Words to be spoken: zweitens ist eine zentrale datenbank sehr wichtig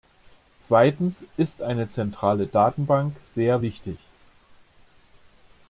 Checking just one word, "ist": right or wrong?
right